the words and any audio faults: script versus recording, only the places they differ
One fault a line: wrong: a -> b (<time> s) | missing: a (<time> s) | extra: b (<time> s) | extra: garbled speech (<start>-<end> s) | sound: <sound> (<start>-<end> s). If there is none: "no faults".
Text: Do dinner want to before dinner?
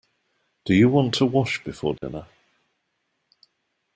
wrong: dinner -> you (0.7 s)
extra: wash (1.3 s)
sound: dropout (2.0-2.0 s)